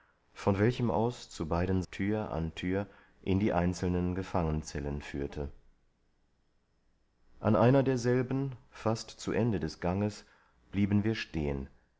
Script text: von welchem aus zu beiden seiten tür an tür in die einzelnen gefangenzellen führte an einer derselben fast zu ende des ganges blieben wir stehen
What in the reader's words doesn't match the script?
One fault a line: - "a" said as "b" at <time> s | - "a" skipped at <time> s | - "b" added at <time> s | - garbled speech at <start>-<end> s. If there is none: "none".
- "seiten" skipped at 1.8 s